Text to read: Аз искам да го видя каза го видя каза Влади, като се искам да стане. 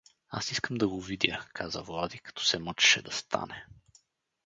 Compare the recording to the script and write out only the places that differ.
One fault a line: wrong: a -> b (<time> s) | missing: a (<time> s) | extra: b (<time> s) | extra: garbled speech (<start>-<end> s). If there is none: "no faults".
missing: го видя каза (1.8 s)
wrong: искам -> мъчеше (2.6 s)